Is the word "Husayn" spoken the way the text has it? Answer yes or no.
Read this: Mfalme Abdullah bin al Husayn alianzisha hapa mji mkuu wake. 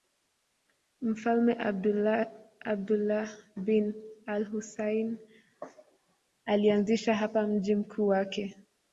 yes